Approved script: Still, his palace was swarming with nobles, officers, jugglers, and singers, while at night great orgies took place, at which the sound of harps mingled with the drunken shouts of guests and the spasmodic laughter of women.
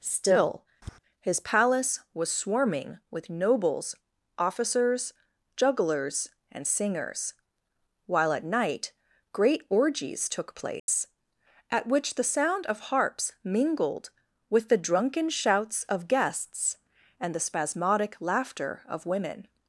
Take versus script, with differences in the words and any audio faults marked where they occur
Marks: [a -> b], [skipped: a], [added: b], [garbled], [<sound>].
Still, [tap] his palace was swarming with nobles, officers, jugglers, and singers, while at night great orgies took place, [dropout] at which the sound of harps mingled with the drunken shouts of guests and the spasmodic laughter of women.